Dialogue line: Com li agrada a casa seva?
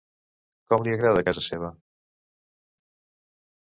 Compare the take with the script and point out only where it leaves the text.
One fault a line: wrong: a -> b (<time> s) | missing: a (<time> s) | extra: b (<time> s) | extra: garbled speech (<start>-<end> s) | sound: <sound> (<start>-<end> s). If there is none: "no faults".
no faults